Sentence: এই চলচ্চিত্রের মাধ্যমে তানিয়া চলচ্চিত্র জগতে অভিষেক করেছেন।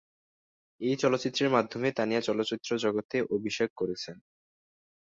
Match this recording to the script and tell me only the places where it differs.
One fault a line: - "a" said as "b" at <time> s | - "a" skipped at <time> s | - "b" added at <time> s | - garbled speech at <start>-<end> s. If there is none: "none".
none